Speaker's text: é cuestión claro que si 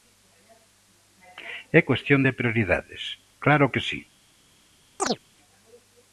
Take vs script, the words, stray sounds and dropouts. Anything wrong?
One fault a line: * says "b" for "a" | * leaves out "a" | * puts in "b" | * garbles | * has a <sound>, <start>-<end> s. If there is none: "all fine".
* puts in "de prioridades"
* has a chirp, 5.0-5.2 s